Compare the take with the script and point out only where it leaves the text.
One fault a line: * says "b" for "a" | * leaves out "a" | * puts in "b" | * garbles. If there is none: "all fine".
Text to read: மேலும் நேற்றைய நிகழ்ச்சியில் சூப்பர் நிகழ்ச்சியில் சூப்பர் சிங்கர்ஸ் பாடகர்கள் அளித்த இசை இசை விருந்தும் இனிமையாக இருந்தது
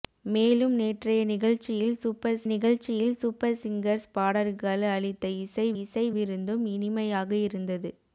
all fine